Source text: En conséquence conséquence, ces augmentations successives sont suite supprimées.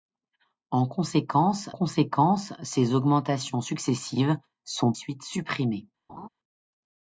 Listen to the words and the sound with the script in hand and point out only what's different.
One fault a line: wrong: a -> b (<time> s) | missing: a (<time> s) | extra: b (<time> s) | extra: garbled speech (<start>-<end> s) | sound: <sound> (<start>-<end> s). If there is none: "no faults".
sound: laugh (6.1-6.3 s)